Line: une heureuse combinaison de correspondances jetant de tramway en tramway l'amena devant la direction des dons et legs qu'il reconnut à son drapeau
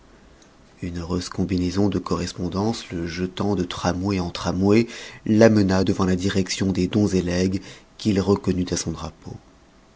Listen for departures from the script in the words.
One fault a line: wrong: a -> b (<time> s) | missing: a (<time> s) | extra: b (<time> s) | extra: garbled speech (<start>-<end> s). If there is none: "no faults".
extra: le (2.9 s)